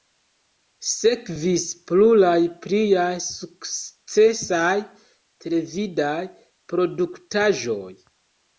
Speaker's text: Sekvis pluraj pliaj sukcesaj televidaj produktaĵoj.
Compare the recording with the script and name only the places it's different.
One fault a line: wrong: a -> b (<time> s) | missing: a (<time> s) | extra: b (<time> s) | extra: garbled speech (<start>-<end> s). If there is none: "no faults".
no faults